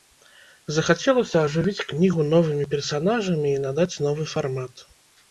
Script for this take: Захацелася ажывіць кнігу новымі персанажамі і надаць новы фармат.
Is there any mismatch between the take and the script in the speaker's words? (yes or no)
no